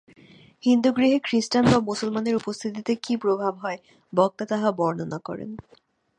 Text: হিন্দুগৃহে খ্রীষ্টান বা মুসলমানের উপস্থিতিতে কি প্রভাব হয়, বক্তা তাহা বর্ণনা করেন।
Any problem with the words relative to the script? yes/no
no